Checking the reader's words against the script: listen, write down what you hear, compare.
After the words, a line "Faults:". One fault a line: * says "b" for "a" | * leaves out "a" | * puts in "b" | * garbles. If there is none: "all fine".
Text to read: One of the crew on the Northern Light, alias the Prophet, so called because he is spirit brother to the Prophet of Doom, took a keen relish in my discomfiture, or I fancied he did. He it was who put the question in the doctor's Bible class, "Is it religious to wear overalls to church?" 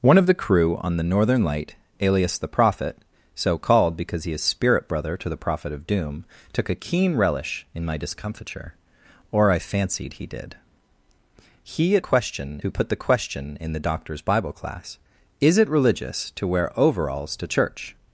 One of the crew on the Northern Light, alias the Prophet, so called because he is spirit brother to the Prophet of Doom, took a keen relish in my discomfiture, or I fancied he did. He it question who put the question in the doctor's Bible class, "Is it religious to wear overalls to church?"
Faults:
* says "question" for "was"